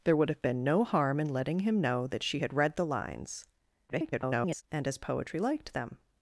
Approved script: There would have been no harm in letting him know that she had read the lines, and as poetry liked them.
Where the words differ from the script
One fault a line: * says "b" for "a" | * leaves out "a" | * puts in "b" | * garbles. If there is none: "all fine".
* garbles